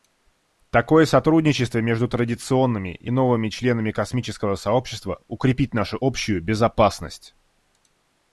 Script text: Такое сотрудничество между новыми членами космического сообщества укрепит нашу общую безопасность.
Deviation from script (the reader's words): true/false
true